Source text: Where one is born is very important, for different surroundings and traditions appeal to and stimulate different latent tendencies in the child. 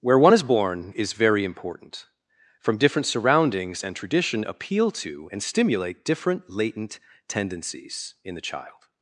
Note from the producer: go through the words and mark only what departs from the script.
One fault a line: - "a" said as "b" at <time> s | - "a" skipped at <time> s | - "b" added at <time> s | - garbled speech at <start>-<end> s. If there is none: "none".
- "for" said as "from" at 2.6 s
- "traditions" said as "tradition" at 3.9 s